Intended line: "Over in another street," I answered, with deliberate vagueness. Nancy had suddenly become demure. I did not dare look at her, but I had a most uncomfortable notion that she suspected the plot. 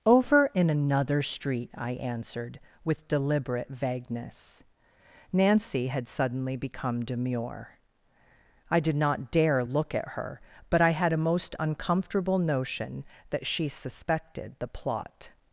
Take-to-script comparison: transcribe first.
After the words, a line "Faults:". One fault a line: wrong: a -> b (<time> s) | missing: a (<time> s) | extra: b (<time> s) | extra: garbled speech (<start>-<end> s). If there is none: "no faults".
"Over in another street," I answered, with deliberate vagueness. Nancy had suddenly become demure. I did not dare look at her, but I had a most uncomfortable notion that she suspected the plot.
Faults:
no faults